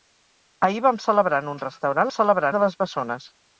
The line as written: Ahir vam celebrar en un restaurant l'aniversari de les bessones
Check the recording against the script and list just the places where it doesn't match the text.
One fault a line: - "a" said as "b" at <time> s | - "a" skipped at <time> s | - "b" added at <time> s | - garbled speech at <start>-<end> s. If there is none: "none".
- "l'aniversari" said as "celebrar" at 2.1 s